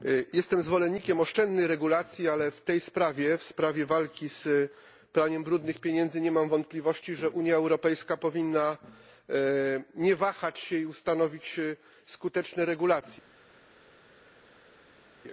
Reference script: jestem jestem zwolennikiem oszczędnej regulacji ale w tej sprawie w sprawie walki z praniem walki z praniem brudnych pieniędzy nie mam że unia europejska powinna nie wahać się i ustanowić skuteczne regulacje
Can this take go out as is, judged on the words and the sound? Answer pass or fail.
fail